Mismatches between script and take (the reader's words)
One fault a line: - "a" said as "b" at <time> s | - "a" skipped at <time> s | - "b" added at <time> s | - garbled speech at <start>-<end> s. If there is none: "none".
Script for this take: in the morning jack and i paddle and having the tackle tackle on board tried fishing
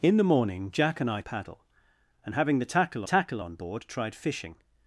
none